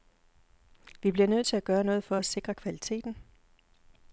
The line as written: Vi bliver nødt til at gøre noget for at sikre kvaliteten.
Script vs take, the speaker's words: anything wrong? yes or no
no